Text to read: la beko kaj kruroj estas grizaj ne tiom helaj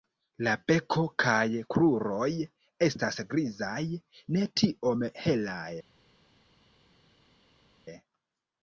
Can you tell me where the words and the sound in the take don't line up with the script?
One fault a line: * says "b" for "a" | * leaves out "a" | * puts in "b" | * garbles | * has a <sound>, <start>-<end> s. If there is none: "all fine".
all fine